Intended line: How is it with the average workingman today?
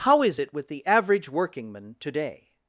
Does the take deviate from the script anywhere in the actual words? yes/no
no